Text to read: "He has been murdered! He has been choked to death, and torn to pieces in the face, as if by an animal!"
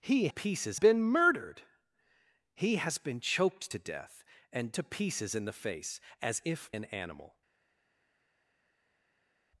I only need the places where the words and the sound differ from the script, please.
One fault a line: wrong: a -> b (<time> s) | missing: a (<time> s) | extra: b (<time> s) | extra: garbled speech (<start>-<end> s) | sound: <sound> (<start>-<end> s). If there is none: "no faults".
wrong: has -> pieces (0.3 s)
missing: torn (4.8 s)
missing: by (6.7 s)